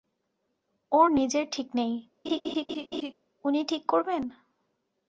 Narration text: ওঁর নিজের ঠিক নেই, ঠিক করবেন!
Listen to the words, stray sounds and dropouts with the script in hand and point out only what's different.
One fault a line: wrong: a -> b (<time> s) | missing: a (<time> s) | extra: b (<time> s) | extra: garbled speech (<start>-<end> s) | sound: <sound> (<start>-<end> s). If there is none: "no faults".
sound: laugh (2.2-3.1 s)
extra: উনি (3.4 s)